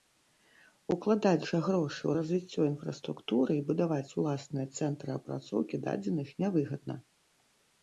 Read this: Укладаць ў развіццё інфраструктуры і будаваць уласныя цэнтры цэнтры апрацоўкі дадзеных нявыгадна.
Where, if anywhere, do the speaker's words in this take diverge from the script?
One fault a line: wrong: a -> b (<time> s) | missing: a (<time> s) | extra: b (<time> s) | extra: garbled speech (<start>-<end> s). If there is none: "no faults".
extra: жа грошы (1.5 s)
missing: цэнтры (5.1 s)